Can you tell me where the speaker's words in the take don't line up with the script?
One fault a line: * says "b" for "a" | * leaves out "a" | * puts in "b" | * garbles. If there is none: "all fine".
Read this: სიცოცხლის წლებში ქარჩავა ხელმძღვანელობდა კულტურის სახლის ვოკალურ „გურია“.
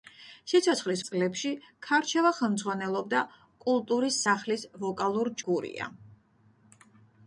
all fine